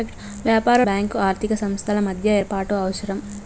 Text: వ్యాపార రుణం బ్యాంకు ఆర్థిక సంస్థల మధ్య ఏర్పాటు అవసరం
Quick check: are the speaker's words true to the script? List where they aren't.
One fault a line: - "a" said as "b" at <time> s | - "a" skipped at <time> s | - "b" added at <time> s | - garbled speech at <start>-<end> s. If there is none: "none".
- "రుణం" skipped at 0.8 s